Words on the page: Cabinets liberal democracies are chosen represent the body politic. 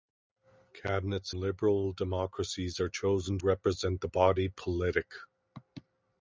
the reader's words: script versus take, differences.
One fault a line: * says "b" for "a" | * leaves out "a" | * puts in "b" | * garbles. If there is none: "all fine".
all fine